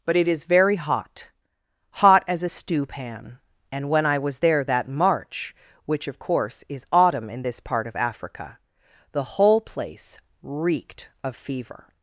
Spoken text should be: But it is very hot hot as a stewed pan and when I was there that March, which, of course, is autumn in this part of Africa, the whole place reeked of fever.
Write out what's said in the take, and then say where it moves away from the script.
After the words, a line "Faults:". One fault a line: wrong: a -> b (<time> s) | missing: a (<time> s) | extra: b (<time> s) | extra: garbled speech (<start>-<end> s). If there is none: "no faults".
But it is very hot hot as a stew pan and when I was there that March, which, of course, is autumn in this part of Africa, the whole place reeked of fever.
Faults:
wrong: stewed -> stew (2.5 s)